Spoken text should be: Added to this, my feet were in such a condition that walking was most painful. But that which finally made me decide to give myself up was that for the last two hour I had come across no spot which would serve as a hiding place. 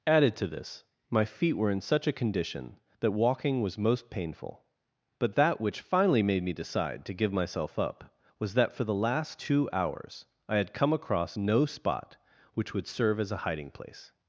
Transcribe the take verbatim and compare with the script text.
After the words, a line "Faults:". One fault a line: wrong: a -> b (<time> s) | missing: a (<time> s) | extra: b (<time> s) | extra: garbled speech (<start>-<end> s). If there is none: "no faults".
Added to this, my feet were in such a condition that walking was most painful. But that which finally made me decide to give myself up was that for the last two hours I had come across no spot which would serve as a hiding place.
Faults:
wrong: hour -> hours (9.7 s)